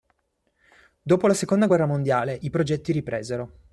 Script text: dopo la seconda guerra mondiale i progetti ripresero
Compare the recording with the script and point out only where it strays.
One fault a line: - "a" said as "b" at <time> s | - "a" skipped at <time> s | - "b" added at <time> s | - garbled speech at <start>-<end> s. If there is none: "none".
none